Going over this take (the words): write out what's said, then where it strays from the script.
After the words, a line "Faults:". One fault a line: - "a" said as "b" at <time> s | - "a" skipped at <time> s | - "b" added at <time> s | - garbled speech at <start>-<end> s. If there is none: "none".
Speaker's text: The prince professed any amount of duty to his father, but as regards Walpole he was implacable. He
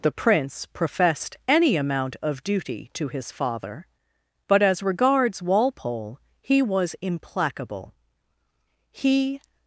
The prince professed any amount of duty to his father, but as regards Walpole he was implacable. He
Faults:
none